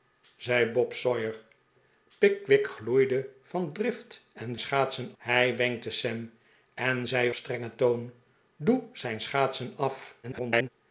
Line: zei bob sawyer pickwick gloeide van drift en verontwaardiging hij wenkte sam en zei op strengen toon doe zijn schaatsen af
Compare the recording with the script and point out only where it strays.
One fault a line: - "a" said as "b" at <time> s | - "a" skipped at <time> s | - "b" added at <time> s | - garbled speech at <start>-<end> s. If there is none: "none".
- "verontwaardiging" said as "schaatsen" at 4.6 s
- "op" skipped at 7.3 s
- garbled speech at 10.2-10.7 s